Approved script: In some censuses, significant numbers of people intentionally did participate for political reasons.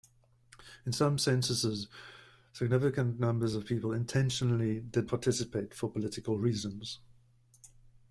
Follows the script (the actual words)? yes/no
yes